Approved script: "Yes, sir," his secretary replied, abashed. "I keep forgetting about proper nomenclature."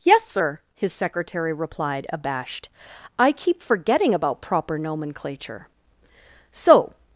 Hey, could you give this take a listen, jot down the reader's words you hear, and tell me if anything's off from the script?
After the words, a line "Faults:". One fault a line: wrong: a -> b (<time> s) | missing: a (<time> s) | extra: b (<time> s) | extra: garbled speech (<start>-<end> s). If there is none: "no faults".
"Yes, sir," his secretary replied, abashed. "I keep forgetting about proper nomenclature." "So
Faults:
extra: So (6.5 s)